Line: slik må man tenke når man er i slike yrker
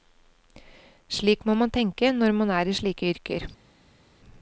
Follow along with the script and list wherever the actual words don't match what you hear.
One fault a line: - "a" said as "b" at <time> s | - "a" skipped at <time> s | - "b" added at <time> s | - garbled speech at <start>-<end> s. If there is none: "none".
none